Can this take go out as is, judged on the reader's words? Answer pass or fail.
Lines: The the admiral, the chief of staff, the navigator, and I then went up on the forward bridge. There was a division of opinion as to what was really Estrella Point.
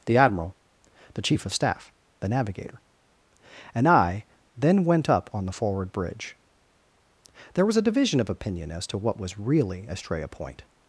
fail